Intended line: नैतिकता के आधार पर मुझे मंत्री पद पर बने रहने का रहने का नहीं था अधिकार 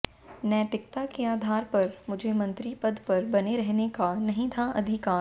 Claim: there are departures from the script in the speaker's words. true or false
true